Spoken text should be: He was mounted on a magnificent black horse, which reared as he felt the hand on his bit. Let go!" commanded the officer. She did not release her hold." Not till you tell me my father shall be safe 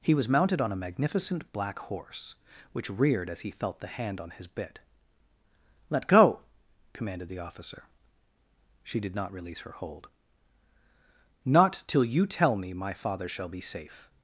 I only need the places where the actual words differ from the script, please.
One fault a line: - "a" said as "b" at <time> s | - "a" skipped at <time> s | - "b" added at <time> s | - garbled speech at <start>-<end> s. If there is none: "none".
none